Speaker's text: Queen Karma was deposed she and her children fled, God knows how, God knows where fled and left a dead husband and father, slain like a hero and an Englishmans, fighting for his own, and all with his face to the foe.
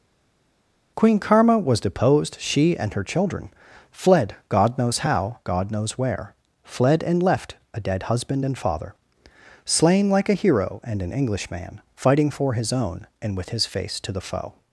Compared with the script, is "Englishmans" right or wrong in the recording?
wrong